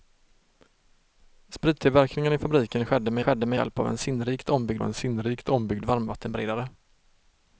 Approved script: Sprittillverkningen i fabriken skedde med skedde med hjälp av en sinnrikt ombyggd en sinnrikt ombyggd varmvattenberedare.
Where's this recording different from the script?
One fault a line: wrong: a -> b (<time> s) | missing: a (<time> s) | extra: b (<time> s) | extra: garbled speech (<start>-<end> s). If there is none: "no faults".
no faults